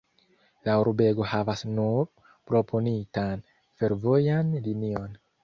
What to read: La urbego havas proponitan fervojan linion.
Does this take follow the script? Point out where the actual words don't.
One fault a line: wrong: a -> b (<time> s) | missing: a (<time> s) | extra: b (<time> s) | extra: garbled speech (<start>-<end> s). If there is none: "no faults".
extra: nur (1.7 s)